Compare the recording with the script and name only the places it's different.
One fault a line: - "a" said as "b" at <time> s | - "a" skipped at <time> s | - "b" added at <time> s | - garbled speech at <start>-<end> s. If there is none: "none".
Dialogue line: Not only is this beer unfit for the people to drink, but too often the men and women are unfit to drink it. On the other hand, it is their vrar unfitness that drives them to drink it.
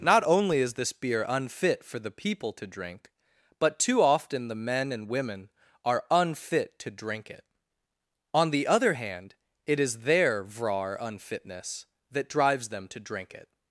none